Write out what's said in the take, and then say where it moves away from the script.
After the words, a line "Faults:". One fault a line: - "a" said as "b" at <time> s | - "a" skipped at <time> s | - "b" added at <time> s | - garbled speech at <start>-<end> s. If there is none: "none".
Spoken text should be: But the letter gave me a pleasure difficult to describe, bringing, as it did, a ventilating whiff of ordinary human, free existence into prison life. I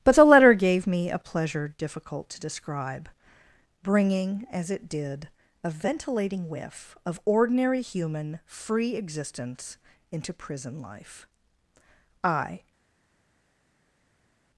But the letter gave me a pleasure difficult to describe, bringing, as it did, a ventilating whiff of ordinary human, free existence into prison life. I
Faults:
none